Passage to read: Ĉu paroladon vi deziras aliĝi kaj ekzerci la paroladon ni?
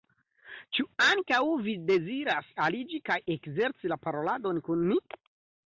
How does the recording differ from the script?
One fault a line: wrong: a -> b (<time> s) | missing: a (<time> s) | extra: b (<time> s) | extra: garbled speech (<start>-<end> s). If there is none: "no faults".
wrong: paroladon -> ankaŭ (1.1 s)
extra: kun (4.7 s)